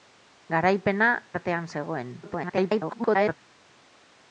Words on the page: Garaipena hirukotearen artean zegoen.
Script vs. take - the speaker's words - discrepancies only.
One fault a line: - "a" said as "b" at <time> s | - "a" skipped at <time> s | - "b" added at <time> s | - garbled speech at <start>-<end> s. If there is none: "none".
- "hirukotearen" skipped at 1.1 s
- garbled speech at 2.2-3.4 s